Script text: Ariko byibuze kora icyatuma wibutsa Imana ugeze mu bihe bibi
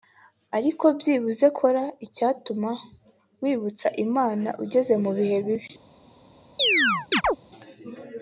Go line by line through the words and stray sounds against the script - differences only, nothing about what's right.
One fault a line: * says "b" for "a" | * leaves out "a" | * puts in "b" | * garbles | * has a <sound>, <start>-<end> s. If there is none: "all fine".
* has a chirp, 6.6-7.4 s